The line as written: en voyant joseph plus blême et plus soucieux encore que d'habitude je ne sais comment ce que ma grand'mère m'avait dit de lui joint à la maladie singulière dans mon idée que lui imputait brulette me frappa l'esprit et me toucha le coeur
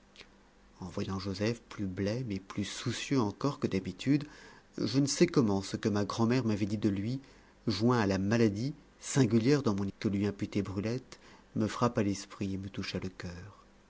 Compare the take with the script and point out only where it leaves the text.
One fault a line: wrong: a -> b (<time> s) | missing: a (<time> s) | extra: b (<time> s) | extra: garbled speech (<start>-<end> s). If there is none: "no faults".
missing: idée (9.9 s)